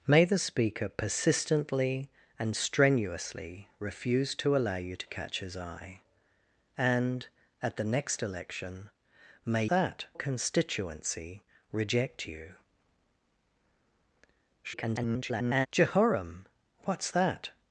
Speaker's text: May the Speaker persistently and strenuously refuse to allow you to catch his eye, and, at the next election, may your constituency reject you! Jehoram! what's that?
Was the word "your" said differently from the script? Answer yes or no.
yes